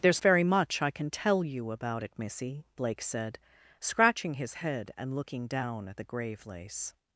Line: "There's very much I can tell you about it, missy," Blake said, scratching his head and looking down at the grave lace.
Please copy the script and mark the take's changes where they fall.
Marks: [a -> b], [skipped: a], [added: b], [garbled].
"There's very much I can tell you about it, missy," Blake said, scratching his head and looking down at the grave lace.